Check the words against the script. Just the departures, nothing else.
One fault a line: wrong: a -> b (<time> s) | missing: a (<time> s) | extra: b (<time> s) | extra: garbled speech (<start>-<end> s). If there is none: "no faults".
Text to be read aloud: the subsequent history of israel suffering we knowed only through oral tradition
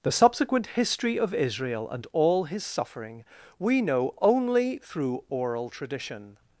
extra: and all his (1.9 s)
wrong: knowed -> know (3.8 s)